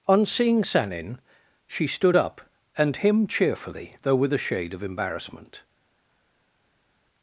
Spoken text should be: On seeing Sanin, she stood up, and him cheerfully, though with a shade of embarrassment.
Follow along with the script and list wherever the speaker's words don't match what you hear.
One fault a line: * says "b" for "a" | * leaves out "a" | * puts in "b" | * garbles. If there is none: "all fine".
all fine